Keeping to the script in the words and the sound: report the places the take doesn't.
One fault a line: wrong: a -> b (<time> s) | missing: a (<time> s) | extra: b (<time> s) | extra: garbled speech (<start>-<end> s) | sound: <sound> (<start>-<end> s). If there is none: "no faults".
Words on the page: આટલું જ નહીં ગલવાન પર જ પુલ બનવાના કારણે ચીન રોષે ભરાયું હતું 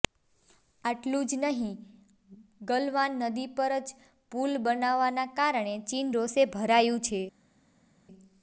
extra: નદી (3.2 s)
wrong: હતું -> છે (7.1 s)